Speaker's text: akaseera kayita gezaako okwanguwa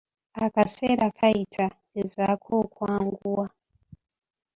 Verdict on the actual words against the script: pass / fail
pass